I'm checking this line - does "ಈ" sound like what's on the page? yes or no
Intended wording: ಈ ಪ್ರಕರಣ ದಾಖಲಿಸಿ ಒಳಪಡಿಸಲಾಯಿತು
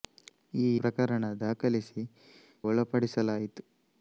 yes